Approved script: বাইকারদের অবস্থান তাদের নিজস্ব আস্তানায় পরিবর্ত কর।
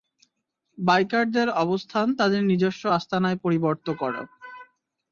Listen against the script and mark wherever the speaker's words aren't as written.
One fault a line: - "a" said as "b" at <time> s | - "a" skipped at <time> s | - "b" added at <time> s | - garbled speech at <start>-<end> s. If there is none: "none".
none